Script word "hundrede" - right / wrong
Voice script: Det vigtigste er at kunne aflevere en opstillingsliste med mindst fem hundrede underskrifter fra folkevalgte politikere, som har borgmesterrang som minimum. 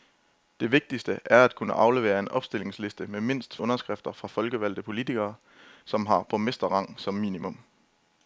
wrong